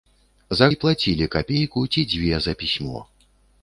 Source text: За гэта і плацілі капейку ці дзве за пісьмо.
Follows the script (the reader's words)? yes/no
no